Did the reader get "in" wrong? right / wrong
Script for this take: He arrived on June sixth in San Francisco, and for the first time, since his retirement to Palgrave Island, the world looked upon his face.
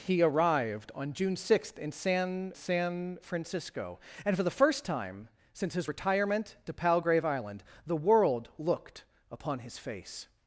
right